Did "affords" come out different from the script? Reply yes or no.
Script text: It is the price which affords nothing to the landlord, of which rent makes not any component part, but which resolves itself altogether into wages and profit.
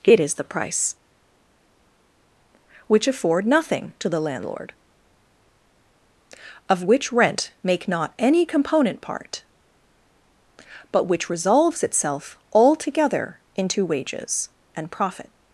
yes